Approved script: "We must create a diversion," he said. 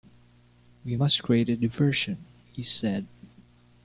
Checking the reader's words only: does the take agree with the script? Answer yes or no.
yes